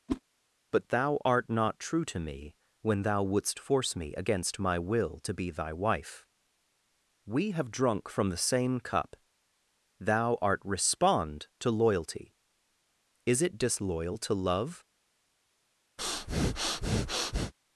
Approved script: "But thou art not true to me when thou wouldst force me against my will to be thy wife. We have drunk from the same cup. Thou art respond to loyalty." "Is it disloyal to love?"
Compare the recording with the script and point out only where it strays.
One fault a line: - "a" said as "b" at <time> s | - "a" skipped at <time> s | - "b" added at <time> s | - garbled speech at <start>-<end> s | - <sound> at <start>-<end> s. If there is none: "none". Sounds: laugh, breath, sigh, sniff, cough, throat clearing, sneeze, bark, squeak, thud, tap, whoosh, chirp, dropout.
- whoosh at 0.1-0.2 s
- breath at 16.0-17.5 s